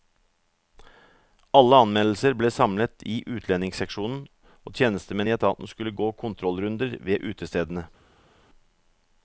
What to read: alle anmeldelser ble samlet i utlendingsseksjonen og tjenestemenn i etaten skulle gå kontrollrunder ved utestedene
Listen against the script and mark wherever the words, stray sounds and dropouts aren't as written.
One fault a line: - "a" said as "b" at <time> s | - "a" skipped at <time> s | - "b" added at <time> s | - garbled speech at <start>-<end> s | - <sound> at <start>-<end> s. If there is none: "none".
none